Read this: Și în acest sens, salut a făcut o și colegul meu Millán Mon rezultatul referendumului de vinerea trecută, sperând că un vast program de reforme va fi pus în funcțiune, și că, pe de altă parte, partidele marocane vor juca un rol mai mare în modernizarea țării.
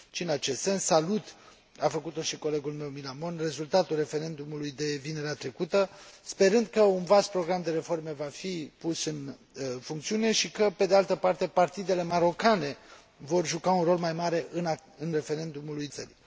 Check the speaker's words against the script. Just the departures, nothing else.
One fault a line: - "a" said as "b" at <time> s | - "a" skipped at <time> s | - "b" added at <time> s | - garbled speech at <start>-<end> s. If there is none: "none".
- "modernizarea" said as "referendumului" at 15.1 s